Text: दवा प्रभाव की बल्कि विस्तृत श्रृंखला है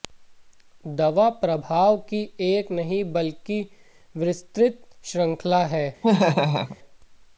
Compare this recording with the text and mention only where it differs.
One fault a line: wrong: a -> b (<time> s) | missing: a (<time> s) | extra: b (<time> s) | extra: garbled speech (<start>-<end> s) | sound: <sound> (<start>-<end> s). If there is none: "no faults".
extra: एक नहीं (2.4 s)
sound: laugh (6.0-6.8 s)